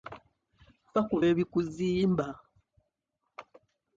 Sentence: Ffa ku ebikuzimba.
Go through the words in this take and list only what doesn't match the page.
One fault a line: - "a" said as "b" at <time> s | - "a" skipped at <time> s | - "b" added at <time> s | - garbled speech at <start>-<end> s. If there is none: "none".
none